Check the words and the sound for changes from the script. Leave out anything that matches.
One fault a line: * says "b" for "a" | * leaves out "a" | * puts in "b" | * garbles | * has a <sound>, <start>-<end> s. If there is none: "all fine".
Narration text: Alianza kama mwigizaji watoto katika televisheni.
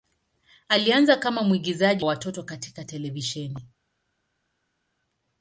all fine